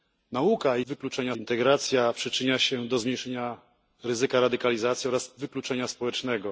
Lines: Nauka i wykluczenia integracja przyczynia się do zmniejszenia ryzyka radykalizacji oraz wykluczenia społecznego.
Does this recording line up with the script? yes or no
yes